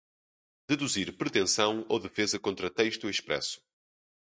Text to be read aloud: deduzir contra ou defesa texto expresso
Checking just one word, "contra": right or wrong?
wrong